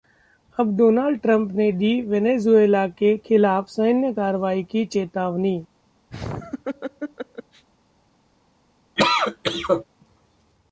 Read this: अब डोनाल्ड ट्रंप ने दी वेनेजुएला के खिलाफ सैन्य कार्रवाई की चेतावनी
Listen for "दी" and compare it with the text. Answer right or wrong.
right